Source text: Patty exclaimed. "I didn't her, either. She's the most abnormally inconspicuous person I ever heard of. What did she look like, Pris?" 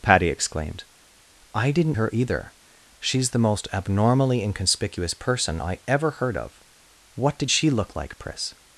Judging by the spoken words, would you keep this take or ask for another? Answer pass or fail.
pass